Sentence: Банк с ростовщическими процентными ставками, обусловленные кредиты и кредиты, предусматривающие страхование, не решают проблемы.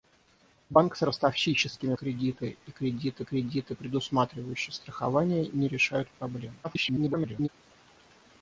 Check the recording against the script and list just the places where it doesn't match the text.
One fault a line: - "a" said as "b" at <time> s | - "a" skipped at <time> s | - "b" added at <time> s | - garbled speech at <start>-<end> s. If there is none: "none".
- "процентными ставками обусловленные" said as "кредиты и" at 1.9 s
- "и" skipped at 3.2 s
- garbled speech at 6.6-7.5 s